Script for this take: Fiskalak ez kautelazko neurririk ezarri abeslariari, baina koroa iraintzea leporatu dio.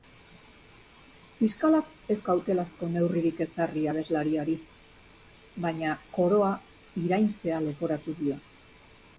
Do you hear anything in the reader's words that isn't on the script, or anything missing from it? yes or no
no